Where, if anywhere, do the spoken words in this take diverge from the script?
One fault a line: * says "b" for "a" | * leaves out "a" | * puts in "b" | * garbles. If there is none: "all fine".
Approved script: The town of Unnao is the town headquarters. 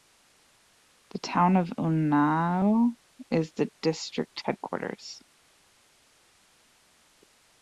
* says "district" for "town"